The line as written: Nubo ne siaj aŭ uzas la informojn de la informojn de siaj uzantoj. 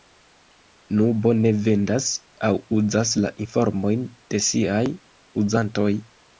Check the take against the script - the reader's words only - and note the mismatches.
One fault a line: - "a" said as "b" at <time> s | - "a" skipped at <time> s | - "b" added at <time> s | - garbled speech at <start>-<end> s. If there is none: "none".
- "siaj" said as "vendas" at 1.7 s
- "la informojn de" skipped at 4.5 s